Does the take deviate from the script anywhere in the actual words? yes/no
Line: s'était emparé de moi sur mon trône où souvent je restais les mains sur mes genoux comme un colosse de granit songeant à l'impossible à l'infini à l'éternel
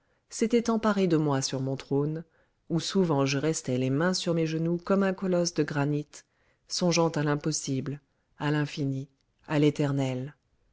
no